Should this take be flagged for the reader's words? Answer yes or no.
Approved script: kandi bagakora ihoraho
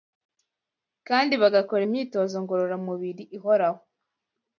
yes